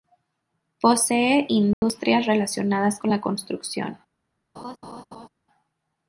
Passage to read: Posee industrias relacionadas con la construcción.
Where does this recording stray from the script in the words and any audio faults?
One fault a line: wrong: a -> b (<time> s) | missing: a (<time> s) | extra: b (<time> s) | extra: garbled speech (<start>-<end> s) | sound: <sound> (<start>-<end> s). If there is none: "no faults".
sound: dropout (1.7-1.8 s)
sound: laugh (4.6-5.3 s)